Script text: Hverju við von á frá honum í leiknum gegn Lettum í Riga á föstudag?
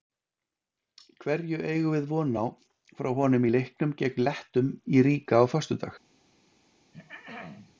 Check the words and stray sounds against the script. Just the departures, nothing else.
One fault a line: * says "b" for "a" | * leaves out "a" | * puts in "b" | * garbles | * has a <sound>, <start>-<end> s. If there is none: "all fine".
* puts in "eigum"
* has a throat clearing, 6.9-7.8 s